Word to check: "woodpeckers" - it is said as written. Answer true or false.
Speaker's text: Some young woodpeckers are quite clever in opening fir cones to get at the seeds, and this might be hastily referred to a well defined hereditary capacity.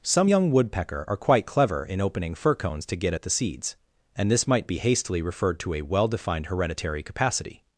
false